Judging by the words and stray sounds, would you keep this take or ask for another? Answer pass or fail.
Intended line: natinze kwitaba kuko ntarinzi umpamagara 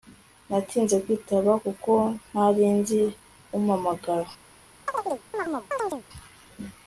fail